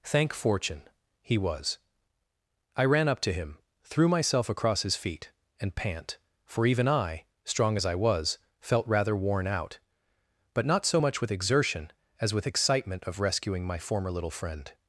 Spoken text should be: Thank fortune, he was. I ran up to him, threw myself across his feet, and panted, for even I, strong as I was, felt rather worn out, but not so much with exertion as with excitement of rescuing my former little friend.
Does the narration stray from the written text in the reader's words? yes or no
yes